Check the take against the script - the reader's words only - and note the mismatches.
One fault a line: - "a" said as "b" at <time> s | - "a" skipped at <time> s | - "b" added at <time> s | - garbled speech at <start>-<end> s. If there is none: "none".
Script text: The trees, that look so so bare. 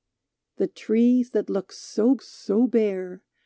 none